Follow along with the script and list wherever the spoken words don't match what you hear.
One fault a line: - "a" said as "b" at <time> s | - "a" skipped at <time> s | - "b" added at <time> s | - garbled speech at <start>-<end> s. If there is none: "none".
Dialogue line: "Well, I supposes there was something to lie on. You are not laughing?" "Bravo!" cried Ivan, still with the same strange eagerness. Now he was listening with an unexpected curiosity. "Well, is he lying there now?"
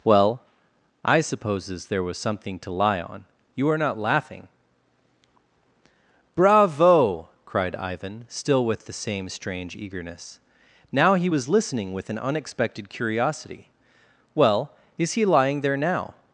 none